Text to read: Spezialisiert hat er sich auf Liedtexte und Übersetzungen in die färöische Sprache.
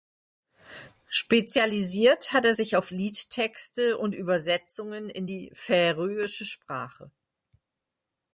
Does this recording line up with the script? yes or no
yes